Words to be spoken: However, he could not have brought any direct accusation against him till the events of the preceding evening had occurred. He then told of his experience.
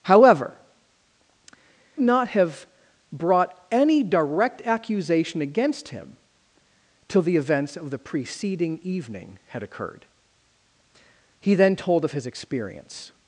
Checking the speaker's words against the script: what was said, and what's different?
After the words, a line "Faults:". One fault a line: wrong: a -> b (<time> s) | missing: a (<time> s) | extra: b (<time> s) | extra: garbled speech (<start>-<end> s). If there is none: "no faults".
However, not have brought any direct accusation against him till the events of the preceding evening had occurred. He then told of his experience.
Faults:
missing: he could (0.6 s)